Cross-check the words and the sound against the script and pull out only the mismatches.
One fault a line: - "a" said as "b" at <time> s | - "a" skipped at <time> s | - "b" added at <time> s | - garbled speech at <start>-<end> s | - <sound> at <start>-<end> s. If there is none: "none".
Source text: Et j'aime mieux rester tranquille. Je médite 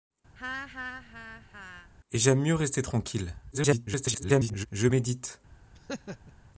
- laugh at 0.4-1.9 s
- garbled speech at 3.5-4.7 s
- laugh at 5.7-6.3 s